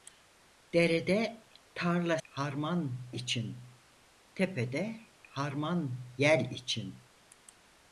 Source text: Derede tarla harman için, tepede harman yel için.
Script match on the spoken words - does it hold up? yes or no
yes